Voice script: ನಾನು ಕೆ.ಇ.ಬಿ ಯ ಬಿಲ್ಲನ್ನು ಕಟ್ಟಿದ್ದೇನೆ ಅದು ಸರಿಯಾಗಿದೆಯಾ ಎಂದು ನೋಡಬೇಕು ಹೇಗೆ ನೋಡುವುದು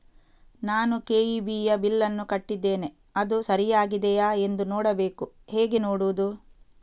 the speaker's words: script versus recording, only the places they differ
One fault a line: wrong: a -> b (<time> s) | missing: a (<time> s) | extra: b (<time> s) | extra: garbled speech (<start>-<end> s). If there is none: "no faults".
no faults